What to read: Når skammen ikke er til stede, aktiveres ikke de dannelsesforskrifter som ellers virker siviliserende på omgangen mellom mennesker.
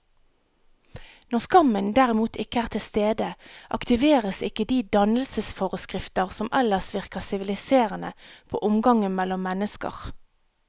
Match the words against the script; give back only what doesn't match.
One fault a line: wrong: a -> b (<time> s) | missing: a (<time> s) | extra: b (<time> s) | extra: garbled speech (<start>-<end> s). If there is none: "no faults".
extra: derimot (2.0 s)